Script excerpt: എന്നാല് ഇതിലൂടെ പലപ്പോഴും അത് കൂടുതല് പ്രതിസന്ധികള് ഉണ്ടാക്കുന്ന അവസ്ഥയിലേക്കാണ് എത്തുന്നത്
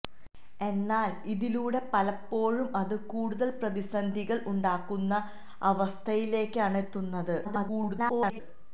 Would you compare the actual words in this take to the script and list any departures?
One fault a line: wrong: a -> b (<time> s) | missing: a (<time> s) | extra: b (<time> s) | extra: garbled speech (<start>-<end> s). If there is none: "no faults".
extra: garbled speech (7.4-8.4 s)